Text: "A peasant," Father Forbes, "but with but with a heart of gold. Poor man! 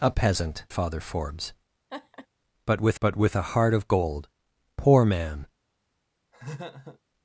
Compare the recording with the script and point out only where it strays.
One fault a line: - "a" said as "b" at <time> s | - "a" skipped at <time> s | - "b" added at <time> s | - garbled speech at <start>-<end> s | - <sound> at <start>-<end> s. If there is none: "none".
- laugh at 1.9-2.3 s
- laugh at 6.3-7.0 s